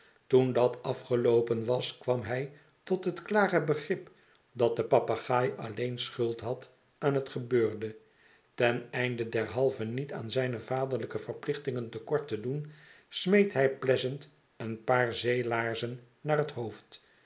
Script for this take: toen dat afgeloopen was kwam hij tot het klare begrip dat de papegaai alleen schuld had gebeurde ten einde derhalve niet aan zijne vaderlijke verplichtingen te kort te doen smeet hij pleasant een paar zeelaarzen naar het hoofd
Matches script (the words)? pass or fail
fail